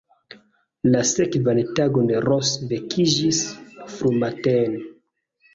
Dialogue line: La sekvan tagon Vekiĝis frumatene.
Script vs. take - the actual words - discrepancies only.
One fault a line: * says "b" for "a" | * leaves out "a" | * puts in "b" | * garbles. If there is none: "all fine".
* puts in "Ros"